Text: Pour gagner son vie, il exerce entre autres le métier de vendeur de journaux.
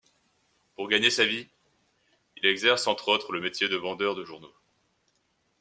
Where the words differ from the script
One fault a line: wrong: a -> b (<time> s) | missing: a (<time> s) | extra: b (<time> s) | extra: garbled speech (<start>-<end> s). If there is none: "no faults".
wrong: son -> sa (1.1 s)